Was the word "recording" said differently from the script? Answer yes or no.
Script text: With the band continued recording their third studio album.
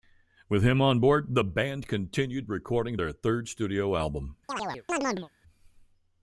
no